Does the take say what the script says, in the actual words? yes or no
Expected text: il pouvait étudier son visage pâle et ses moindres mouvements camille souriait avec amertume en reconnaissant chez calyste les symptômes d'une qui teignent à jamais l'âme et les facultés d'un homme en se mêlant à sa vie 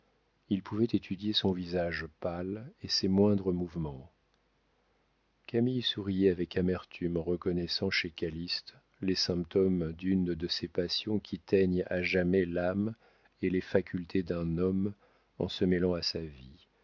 no